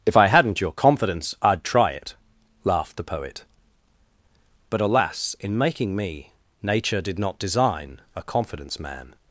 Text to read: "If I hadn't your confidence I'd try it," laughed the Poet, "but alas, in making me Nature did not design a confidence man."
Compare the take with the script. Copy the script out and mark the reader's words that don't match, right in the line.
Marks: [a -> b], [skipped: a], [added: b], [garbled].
"If I hadn't your confidence I'd try it," laughed the Poet, "but alas, in making me Nature did not design a confidence man."